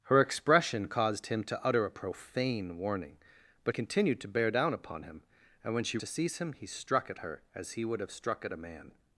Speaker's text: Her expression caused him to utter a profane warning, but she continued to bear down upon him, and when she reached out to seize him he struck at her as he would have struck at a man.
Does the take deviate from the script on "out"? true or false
true